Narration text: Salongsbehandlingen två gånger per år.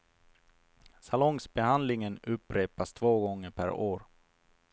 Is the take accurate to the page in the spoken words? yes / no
no